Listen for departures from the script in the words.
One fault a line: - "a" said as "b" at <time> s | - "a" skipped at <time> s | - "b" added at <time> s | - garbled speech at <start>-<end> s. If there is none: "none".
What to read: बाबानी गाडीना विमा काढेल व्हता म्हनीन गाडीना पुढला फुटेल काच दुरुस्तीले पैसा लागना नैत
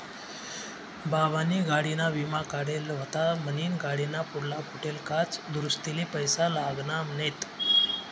none